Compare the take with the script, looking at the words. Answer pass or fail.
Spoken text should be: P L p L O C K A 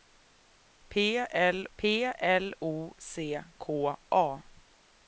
pass